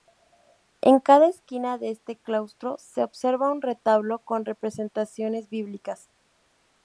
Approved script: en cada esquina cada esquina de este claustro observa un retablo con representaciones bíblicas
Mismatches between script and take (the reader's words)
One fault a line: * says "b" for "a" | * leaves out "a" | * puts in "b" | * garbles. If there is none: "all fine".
* leaves out "cada esquina"
* puts in "se"